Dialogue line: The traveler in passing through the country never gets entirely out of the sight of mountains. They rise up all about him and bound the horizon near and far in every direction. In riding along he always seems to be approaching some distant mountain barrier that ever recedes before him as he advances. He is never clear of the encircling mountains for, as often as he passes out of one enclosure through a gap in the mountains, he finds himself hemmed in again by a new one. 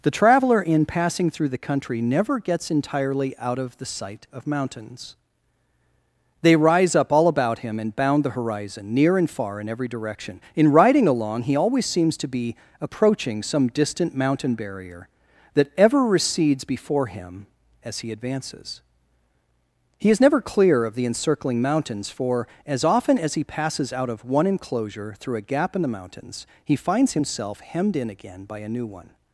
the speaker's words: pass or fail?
pass